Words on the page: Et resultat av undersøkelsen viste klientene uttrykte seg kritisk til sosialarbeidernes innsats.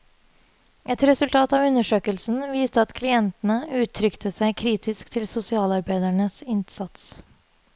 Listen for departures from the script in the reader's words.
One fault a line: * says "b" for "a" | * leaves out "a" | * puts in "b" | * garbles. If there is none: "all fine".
* puts in "at"